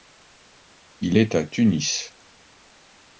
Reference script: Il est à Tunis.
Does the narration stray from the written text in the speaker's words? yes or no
no